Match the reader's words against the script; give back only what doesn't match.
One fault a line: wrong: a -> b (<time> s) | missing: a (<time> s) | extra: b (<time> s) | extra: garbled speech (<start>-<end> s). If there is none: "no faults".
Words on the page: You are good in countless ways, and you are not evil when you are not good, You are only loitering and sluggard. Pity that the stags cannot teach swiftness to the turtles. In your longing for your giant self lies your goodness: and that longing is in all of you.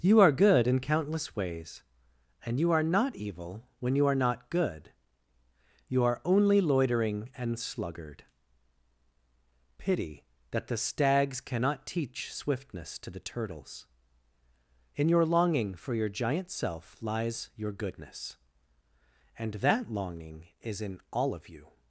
no faults